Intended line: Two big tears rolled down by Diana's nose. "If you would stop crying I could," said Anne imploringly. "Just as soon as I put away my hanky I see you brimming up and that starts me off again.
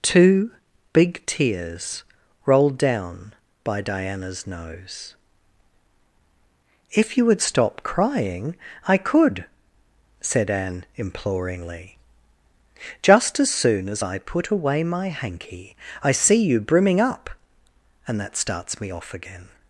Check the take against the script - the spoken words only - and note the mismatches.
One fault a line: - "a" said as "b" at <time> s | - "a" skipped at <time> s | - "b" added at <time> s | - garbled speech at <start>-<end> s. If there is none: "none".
none